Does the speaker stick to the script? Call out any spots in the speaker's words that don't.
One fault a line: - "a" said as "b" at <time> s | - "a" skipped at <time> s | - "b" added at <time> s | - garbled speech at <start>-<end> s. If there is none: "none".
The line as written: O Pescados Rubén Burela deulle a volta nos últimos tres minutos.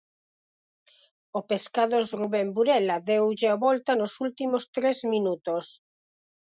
none